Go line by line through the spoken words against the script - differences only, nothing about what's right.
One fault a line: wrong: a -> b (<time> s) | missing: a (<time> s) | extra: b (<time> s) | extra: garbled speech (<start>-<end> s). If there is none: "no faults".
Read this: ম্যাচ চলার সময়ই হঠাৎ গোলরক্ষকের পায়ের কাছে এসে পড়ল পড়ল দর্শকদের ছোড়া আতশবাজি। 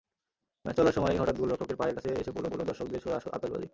no faults